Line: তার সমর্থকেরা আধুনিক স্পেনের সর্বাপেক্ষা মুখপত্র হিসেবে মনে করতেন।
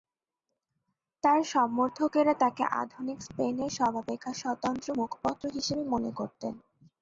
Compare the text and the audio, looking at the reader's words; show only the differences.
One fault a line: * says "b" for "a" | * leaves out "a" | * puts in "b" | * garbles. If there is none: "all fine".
* puts in "তাকে"
* puts in "স্বতন্ত্র"